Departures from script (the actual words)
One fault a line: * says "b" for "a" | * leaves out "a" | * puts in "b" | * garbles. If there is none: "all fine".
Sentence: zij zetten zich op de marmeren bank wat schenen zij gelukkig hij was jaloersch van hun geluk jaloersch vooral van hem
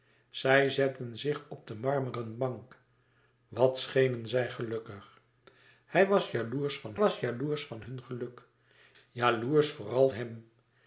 * puts in "was jaloersch van"
* leaves out "van"